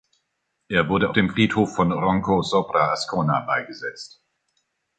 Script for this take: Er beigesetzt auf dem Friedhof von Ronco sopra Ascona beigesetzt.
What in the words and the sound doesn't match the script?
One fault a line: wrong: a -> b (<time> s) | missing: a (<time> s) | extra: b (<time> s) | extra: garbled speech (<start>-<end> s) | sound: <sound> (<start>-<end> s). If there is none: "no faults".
wrong: beigesetzt -> wurde (0.9 s)